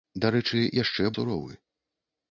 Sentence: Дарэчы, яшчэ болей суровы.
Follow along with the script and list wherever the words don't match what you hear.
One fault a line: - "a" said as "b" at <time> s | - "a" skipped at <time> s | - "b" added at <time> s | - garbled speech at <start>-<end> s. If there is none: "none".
- "болей" skipped at 1.1 s